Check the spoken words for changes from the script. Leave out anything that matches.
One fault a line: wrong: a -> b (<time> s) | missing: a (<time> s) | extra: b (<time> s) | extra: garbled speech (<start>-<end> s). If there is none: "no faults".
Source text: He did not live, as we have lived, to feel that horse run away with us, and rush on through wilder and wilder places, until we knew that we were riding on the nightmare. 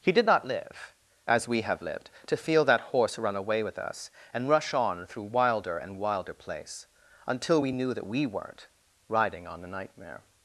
wrong: places -> place (6.3 s)
wrong: were -> weren't (8.3 s)